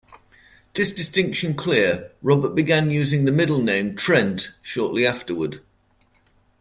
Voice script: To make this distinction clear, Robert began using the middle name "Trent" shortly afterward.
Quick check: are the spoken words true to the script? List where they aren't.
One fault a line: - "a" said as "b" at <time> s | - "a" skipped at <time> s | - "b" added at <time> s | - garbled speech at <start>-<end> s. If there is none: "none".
- "make" skipped at 0.8 s